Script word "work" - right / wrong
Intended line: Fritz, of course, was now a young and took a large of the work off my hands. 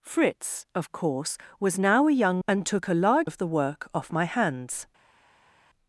right